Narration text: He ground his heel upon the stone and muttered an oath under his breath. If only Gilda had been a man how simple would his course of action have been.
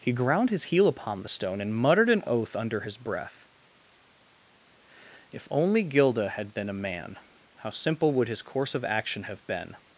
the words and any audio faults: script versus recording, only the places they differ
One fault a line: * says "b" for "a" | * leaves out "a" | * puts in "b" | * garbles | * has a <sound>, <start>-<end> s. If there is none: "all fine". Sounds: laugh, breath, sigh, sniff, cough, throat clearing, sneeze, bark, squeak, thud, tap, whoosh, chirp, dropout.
all fine